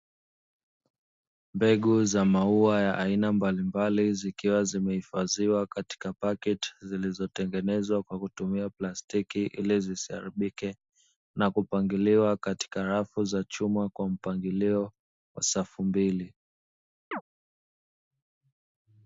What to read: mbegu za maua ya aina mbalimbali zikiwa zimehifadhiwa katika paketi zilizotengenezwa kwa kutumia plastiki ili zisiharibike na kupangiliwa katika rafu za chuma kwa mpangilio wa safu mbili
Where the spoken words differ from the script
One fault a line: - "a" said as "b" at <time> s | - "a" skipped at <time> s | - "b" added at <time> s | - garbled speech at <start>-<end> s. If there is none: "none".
none